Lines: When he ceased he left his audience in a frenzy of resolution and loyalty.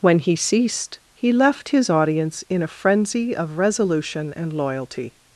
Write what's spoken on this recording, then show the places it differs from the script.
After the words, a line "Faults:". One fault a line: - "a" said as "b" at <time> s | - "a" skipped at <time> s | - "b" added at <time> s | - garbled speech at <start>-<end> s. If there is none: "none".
When he ceased he left his audience in a frenzy of resolution and loyalty.
Faults:
none